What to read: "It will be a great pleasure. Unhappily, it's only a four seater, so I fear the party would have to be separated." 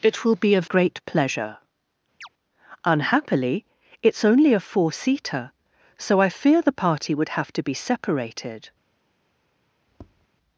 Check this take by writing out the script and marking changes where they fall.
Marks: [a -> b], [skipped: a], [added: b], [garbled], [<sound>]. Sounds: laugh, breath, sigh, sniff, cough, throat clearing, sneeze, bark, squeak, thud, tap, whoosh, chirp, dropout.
"It will be a great pleasure. [chirp] Unhappily, it's only a four seater, so I fear the party would have to be separated." [tap]